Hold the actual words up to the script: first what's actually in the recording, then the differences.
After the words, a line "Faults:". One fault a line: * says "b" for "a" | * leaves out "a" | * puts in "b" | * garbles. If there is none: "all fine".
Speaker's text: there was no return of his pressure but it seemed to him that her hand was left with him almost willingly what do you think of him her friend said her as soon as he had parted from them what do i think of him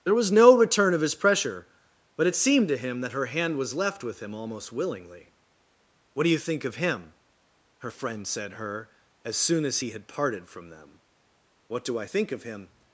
there was no return of his pressure but it seemed to him that her hand was left with him almost willingly what do you think of him her friend said her as soon as he had parted from them what do i think of him
Faults:
all fine